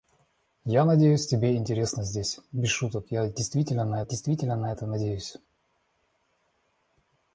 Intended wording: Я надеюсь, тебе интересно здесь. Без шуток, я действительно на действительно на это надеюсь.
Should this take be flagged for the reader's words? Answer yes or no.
no